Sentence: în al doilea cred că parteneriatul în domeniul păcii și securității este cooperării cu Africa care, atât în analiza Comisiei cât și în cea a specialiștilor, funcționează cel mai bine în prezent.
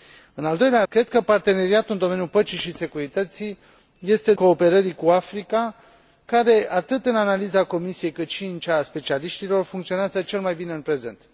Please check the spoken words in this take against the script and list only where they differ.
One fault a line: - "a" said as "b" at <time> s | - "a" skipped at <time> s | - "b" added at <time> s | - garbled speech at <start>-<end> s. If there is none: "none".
none